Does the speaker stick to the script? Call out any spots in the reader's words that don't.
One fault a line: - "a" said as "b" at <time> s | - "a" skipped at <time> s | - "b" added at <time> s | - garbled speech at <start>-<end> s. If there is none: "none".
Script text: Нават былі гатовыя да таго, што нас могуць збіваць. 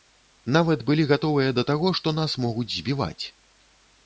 none